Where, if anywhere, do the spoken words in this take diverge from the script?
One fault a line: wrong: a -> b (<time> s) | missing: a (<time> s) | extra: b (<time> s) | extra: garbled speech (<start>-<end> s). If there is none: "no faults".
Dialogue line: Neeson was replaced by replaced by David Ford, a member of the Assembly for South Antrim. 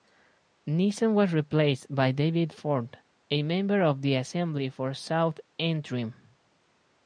missing: replaced by (2.1 s)